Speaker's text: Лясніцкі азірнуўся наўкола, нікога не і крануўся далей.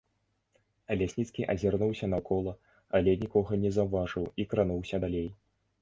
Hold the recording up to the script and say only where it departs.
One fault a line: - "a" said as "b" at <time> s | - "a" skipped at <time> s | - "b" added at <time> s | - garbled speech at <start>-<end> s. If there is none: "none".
- "але" added at 3.0 s
- "заўважыў" added at 3.8 s